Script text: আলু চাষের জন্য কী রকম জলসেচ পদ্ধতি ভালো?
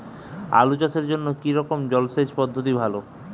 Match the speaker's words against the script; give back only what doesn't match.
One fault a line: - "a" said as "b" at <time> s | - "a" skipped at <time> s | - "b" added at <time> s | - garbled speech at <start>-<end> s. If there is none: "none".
none